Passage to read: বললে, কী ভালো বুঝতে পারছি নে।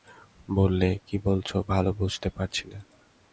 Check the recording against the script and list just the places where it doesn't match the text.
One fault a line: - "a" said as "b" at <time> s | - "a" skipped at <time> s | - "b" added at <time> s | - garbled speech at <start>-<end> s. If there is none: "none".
- "বলছ" added at 1.2 s